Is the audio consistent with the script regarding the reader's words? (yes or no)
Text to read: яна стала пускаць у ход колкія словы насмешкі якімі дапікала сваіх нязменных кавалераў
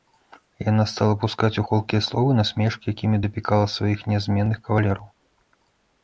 no